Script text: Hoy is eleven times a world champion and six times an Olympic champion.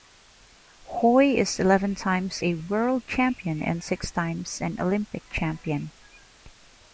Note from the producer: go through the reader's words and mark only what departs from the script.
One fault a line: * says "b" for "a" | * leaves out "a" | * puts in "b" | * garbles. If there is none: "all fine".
all fine